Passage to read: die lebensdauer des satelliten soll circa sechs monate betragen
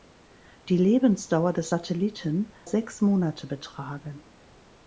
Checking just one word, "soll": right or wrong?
wrong